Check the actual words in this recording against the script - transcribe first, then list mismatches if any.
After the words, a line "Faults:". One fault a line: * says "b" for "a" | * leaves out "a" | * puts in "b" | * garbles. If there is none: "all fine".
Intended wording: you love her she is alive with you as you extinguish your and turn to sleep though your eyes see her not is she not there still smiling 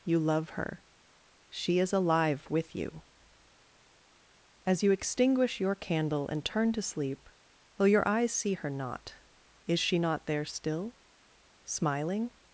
you love her she is alive with you as you extinguish your candle and turn to sleep though your eyes see her not is she not there still smiling
Faults:
* puts in "candle"